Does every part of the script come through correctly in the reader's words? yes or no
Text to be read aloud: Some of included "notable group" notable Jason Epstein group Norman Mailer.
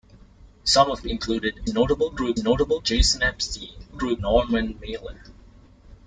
yes